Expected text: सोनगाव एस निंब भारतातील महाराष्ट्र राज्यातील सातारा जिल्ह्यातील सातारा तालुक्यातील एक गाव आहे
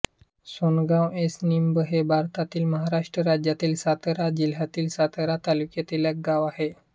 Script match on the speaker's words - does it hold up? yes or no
no